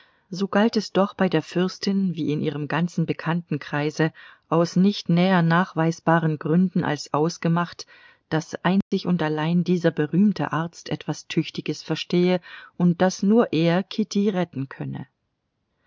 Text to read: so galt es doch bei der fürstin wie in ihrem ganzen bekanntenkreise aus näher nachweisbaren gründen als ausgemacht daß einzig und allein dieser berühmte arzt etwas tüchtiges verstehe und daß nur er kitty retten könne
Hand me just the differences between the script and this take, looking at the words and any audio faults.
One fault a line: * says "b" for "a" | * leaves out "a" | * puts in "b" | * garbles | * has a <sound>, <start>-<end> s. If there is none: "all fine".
* puts in "nicht"
* has a dropout, 8.8-8.9 s